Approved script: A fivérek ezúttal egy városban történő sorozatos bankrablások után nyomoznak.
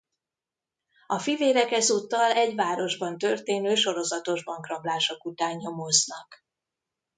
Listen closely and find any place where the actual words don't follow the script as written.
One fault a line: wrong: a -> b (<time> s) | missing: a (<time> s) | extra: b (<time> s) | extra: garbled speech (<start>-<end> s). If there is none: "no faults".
no faults